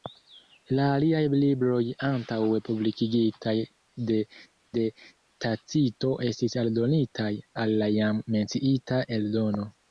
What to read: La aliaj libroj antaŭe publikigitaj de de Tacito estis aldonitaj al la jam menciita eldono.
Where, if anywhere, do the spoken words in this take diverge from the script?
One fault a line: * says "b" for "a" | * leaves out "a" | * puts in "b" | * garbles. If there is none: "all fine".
all fine